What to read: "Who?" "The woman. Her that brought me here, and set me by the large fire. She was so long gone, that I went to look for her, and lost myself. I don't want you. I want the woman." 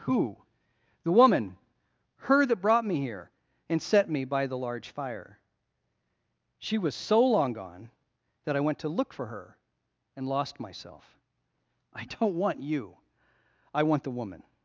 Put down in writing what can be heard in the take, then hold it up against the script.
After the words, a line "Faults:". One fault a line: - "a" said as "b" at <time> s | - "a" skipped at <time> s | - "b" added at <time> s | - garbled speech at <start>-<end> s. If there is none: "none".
"Who?" "The woman. Her that brought me here, and set me by the large fire. She was so long gone, that I went to look for her, and lost myself. I don't want you. I want the woman."
Faults:
none